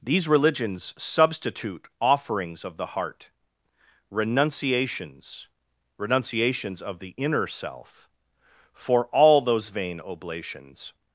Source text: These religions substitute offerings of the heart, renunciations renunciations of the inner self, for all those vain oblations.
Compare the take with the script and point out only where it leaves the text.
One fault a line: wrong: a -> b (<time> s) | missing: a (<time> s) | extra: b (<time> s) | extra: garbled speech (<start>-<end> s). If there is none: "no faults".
no faults